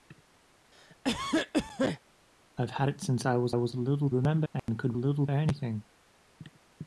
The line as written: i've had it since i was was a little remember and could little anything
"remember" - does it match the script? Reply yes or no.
yes